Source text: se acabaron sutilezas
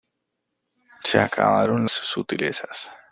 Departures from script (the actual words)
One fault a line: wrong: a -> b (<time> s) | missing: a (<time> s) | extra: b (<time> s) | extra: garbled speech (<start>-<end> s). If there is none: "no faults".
no faults